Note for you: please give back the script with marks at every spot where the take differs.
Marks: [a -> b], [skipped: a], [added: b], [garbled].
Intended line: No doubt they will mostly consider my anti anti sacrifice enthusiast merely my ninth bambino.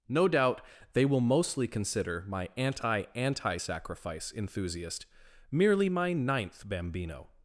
No doubt they will mostly consider my anti anti sacrifice enthusiast merely my ninth bambino.